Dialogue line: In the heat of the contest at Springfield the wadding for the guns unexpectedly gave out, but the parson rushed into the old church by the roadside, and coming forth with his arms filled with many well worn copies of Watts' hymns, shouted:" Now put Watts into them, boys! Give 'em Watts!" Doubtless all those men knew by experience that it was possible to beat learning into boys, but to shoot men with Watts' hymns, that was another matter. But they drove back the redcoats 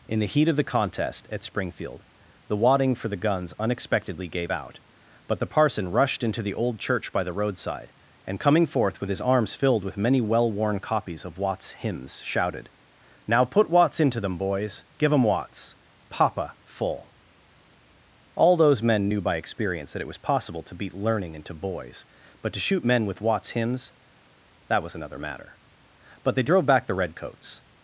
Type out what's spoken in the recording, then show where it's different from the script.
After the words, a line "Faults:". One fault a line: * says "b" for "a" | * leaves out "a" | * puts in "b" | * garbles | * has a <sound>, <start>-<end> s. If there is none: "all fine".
In the heat of the contest at Springfield the wadding for the guns unexpectedly gave out, but the parson rushed into the old church by the roadside, and coming forth with his arms filled with many well worn copies of Watts' hymns, shouted:" Now put Watts into them, boys! Give 'em Watts!" Papa full all those men knew by experience that it was possible to beat learning into boys, but to shoot men with Watts' hymns, that was another matter. But they drove back the redcoats
Faults:
* says "Papa full" for "Doubtless"